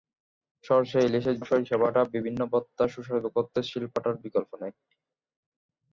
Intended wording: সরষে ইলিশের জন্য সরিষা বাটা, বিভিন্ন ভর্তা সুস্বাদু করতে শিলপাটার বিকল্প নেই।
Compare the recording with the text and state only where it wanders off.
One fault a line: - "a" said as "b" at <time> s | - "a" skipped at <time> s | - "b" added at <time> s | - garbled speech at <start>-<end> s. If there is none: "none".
- "জন্য" skipped at 1.4 s